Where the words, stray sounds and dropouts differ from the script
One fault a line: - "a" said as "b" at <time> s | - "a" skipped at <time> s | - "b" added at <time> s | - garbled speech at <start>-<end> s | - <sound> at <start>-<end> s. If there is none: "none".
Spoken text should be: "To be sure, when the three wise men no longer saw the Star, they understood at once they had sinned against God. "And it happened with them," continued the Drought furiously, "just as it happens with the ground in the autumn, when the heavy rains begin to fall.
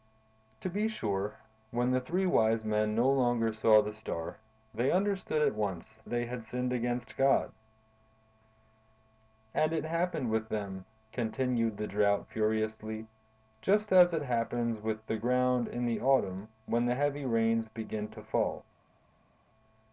none